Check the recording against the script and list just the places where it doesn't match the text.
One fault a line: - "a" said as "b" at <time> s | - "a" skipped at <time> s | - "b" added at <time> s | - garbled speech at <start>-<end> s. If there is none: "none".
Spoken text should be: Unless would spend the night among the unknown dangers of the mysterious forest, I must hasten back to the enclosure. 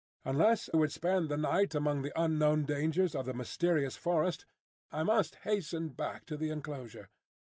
none